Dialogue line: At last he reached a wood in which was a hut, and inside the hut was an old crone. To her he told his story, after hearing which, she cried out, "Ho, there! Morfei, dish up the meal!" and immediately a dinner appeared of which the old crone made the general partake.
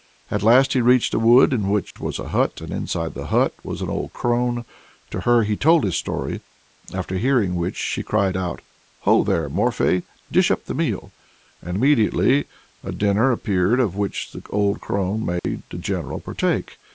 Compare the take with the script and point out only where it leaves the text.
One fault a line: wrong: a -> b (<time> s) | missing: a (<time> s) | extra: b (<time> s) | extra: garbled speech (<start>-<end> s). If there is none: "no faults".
no faults